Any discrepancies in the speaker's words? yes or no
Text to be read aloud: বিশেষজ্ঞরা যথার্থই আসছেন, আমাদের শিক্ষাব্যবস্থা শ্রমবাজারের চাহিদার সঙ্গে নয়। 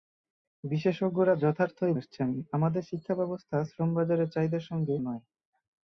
no